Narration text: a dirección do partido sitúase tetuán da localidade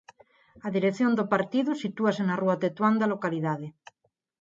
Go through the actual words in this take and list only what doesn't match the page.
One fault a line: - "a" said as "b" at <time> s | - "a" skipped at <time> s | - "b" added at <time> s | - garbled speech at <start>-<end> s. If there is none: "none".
- "na rúa" added at 2.3 s